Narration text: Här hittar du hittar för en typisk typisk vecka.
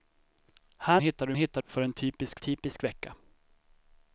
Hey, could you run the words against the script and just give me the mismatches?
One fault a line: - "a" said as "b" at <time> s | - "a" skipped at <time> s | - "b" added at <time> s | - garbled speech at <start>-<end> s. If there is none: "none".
none